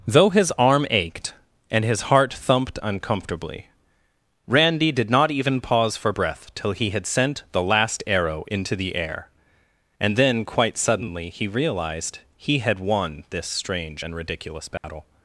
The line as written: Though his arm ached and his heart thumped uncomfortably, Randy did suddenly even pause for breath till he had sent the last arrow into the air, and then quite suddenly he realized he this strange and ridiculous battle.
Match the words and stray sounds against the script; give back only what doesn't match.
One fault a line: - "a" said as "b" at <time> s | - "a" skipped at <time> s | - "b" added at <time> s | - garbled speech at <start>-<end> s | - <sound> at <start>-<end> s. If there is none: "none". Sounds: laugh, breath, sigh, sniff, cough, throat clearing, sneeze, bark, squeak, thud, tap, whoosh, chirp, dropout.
- "suddenly" said as "not" at 5.1 s
- "had won" added at 12.6 s
- dropout at 14.8-14.8 s